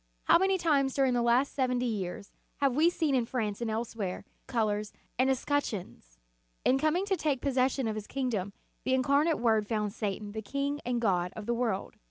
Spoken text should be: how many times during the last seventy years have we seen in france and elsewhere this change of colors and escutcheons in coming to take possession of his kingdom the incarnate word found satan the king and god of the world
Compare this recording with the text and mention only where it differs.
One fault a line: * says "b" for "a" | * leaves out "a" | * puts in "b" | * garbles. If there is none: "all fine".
* leaves out "this change of"